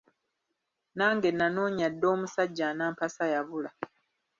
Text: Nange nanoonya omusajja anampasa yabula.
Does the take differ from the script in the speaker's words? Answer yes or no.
yes